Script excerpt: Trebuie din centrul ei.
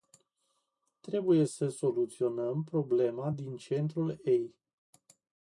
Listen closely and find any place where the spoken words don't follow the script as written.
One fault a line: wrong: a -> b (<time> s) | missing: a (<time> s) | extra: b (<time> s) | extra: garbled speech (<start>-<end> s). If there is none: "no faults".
extra: să soluționăm problema (1.4 s)